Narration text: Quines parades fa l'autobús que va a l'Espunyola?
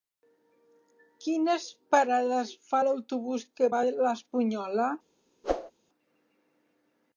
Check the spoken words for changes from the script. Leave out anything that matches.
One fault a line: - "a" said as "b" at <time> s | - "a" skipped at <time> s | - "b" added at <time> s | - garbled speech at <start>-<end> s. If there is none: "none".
none